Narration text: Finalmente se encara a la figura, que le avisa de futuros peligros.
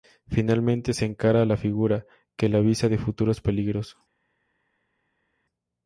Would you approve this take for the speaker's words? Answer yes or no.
yes